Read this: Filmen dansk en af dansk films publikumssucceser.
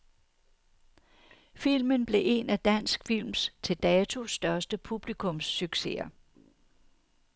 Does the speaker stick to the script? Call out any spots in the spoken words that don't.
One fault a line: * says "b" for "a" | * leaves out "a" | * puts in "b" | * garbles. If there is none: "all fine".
* says "blev" for "dansk"
* puts in "til dato største"